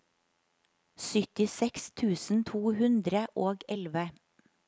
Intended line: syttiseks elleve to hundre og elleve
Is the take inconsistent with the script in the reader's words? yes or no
yes